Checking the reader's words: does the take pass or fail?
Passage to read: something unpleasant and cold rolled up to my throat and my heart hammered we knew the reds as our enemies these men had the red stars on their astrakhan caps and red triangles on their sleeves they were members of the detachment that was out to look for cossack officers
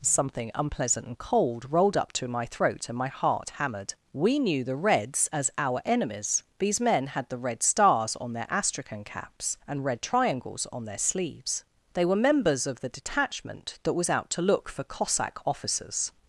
pass